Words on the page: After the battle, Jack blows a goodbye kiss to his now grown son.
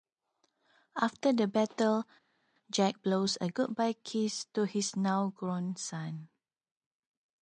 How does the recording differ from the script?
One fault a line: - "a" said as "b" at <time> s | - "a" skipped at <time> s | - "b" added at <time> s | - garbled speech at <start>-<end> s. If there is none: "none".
none